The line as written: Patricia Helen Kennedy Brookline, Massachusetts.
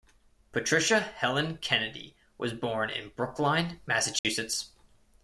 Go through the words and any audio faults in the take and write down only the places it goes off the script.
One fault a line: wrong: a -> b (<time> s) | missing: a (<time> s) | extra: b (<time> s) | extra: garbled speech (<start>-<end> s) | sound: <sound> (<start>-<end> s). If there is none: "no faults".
extra: was born in (2.4 s)
sound: dropout (4.2-4.2 s)